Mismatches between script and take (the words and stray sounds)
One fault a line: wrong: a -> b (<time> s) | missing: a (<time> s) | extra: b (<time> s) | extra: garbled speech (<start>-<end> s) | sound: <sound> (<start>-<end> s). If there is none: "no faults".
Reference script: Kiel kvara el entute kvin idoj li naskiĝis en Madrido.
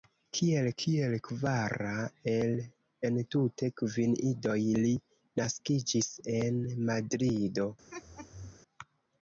extra: kiel (0.8 s)
sound: laugh (7.9-8.6 s)